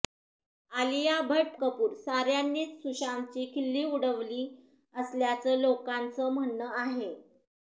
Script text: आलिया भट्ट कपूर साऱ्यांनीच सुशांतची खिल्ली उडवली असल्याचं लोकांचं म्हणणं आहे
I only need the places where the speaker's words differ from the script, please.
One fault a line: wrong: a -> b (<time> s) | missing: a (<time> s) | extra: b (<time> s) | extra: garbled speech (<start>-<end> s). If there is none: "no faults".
no faults